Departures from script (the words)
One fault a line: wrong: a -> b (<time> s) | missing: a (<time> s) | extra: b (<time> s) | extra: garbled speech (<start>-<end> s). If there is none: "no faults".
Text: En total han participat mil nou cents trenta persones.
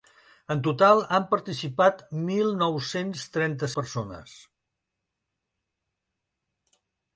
no faults